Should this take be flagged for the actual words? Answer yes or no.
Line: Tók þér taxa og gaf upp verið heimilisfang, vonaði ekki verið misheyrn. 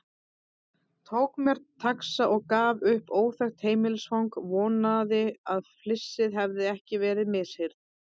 yes